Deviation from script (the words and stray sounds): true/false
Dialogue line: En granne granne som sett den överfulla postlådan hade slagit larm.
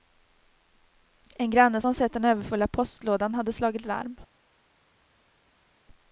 true